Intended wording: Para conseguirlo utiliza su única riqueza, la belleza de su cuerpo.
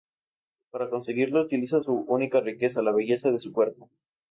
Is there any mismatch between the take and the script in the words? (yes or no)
no